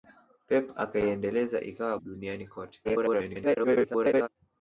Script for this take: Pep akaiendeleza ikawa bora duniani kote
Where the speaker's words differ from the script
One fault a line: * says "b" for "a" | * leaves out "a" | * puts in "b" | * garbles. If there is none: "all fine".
* leaves out "bora"
* garbles